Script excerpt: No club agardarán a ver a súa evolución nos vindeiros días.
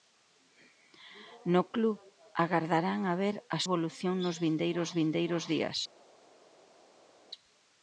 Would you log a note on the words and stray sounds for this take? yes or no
yes